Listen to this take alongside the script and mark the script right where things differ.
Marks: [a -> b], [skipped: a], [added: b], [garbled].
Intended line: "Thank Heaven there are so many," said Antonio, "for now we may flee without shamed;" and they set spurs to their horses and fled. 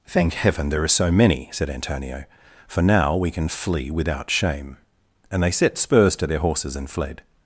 "Thank Heaven there are so many," said Antonio, "for now we [may -> can] flee without [shamed;" -> shame] and they set spurs to their horses and fled.